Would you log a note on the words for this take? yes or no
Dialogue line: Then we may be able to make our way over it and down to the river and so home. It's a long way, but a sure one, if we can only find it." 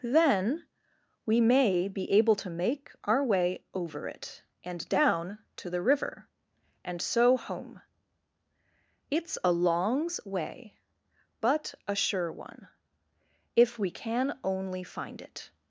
yes